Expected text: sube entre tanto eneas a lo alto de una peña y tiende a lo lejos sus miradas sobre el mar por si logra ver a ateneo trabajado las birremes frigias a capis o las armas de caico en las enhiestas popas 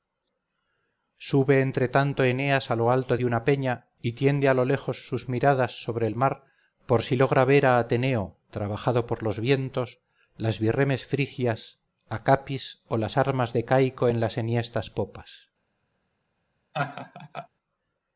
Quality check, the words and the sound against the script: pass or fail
fail